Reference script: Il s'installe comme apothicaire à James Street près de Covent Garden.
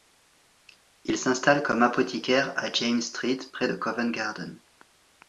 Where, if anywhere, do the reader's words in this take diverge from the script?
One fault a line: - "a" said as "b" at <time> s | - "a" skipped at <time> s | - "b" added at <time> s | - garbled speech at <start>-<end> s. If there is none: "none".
none